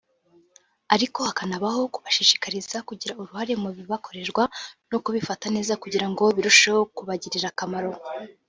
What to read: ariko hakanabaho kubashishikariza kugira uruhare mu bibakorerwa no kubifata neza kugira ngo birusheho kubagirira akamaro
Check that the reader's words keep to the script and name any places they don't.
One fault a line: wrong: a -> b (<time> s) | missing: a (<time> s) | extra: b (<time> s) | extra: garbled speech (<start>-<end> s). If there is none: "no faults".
no faults